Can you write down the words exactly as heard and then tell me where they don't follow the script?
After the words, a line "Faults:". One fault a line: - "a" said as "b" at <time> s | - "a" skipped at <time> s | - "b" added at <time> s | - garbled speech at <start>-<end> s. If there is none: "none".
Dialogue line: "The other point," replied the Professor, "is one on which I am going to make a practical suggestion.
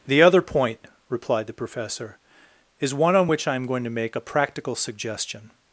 "The other point," replied the Professor, "is one on which I am going to make a practical suggestion.
Faults:
none